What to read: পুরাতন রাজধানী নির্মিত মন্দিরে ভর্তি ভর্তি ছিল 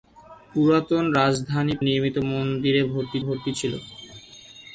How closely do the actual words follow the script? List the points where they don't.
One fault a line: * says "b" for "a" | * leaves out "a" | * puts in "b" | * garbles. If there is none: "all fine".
all fine